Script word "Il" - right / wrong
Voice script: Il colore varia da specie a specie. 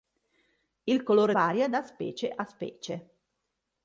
right